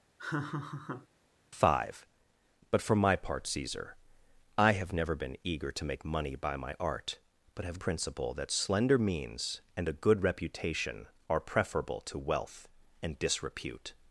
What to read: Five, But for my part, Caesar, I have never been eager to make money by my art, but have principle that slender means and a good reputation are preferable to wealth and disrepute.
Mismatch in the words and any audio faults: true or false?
true